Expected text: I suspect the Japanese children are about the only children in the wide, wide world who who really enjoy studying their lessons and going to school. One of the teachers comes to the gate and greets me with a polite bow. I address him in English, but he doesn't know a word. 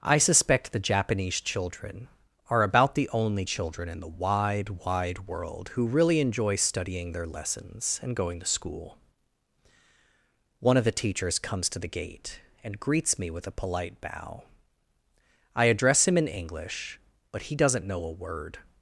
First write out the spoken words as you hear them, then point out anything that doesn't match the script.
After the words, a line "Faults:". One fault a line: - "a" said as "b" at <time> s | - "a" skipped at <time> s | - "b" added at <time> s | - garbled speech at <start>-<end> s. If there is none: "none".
I suspect the Japanese children are about the only children in the wide, wide world who really enjoy studying their lessons and going to school. One of the teachers comes to the gate and greets me with a polite bow. I address him in English, but he doesn't know a word.
Faults:
- "who" skipped at 5.9 s